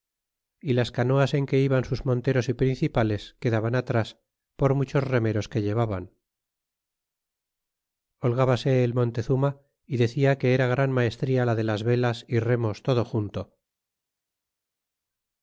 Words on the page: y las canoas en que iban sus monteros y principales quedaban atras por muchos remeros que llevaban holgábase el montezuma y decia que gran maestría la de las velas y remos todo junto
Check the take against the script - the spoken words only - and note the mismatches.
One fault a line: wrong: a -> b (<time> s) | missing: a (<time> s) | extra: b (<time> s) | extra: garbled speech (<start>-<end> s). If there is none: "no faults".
extra: era (10.5 s)